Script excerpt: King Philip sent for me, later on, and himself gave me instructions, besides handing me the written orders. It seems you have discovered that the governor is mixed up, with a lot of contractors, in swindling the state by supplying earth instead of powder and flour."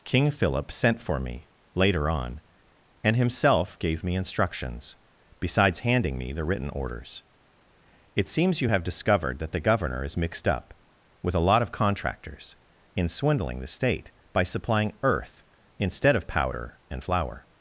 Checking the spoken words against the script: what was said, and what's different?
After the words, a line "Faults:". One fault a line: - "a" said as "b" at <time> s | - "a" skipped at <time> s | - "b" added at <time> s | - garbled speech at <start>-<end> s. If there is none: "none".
King Philip sent for me, later on, and himself gave me instructions, besides handing me the written orders. It seems you have discovered that the governor is mixed up, with a lot of contractors, in swindling the state by supplying earth instead of powder and flour."
Faults:
none